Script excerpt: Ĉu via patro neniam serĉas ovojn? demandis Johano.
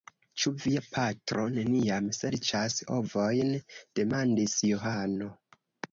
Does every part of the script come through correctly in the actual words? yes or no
yes